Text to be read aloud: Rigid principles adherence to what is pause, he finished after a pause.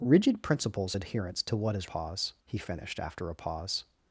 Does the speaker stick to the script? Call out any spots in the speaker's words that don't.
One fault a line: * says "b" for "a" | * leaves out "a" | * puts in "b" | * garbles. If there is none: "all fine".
all fine